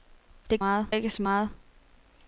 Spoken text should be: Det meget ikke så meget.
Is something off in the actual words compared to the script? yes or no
no